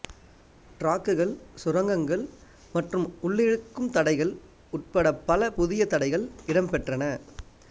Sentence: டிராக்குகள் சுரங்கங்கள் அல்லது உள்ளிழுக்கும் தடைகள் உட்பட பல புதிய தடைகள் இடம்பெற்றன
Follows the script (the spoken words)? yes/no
no